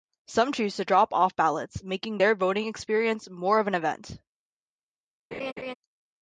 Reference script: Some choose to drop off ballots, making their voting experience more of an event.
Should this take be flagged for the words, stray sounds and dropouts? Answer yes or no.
yes